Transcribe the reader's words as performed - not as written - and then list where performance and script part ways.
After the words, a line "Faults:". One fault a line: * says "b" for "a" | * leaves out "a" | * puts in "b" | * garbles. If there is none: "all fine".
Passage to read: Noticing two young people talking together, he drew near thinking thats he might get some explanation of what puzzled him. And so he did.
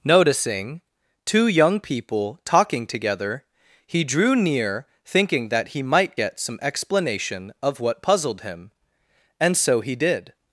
Noticing two young people talking together, he drew near thinking that he might get some explanation of what puzzled him. And so he did.
Faults:
* says "that" for "thats"